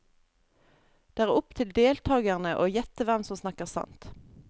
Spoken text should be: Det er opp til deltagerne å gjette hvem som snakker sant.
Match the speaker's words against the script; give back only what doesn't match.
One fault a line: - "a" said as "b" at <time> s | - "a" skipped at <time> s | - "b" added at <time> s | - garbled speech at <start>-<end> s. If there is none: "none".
none